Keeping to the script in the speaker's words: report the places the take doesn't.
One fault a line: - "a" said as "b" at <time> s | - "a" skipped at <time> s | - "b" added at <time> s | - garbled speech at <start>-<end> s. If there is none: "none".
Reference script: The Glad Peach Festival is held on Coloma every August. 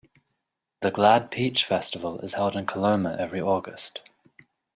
- "on" said as "in" at 2.6 s